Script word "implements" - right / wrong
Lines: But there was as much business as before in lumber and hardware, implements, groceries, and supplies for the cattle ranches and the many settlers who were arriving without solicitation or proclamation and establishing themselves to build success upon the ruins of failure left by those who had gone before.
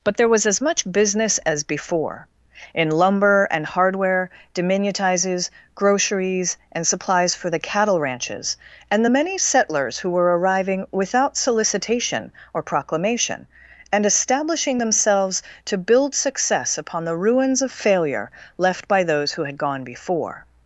wrong